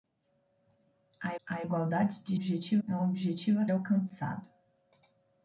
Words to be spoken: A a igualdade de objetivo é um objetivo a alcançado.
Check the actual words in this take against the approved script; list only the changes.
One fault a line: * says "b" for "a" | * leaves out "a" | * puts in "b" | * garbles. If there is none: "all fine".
all fine